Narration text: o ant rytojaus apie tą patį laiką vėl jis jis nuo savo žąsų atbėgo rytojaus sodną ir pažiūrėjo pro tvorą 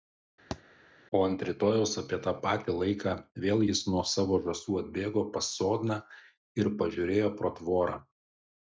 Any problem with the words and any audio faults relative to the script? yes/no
yes